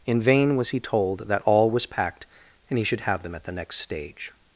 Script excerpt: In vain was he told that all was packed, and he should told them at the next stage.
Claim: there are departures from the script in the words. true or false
true